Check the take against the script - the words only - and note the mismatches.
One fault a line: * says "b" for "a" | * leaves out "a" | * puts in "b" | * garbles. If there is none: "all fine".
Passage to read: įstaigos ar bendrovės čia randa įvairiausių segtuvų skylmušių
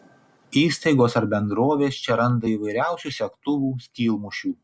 all fine